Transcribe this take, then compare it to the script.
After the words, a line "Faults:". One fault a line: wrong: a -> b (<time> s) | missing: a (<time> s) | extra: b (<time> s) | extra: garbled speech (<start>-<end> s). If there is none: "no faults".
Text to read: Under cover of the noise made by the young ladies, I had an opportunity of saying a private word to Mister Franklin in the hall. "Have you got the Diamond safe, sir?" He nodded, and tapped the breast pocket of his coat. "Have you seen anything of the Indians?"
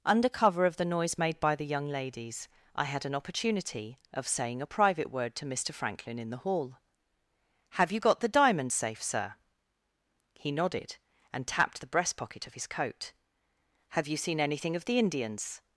Under cover of the noise made by the young ladies, I had an opportunity of saying a private word to Mister Franklin in the hall. "Have you got the Diamond safe, sir?" He nodded, and tapped the breast pocket of his coat. "Have you seen anything of the Indians?"
Faults:
no faults